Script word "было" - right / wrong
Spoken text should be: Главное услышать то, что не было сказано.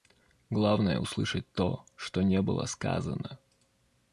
right